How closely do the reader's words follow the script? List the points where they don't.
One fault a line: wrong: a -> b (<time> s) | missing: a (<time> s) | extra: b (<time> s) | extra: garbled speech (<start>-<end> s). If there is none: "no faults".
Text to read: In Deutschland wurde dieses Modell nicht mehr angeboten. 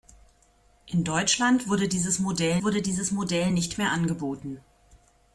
extra: wurde dieses Modell (2.6 s)